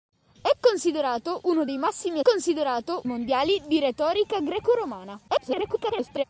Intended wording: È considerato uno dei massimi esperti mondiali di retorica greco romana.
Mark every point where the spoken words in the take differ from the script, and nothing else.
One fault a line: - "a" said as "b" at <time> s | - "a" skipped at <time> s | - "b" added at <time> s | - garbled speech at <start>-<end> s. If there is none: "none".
- "esperti" said as "considerato" at 2.2 s
- garbled speech at 5.3-6.2 s